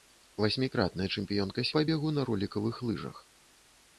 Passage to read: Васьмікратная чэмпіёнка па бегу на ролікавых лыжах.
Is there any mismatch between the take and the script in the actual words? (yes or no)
no